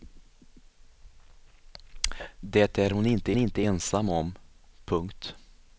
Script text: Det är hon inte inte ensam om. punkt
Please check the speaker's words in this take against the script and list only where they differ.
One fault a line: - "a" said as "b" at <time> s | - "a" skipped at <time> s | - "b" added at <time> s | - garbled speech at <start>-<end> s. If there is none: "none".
none